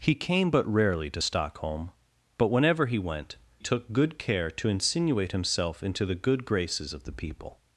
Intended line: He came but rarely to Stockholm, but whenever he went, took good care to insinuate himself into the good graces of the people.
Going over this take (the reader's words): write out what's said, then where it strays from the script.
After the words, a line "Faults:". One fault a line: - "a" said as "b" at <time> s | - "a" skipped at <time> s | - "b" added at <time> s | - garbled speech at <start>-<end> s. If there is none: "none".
He came but rarely to Stockholm, but whenever he went, took good care to insinuate himself into the good graces of the people.
Faults:
none